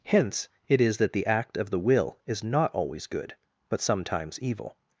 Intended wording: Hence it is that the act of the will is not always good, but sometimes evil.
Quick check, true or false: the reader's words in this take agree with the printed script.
true